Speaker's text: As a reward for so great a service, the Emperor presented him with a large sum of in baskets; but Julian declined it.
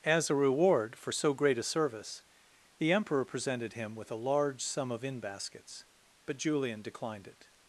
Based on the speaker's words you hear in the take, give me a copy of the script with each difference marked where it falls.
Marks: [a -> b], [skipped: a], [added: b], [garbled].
As a reward for so great a service, the Emperor presented him with a large sum of in baskets; but Julian declined it.